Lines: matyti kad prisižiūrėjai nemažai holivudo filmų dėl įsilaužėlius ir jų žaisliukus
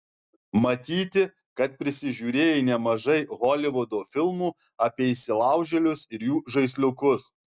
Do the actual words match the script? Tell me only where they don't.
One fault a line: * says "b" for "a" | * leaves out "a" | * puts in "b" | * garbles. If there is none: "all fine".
* says "apie" for "dėl"